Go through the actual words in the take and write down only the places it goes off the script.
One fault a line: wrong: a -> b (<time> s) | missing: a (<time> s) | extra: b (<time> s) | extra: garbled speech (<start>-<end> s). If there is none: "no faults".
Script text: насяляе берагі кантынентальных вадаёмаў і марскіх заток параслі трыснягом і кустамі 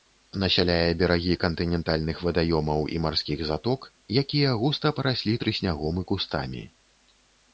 extra: якія густа (4.2 s)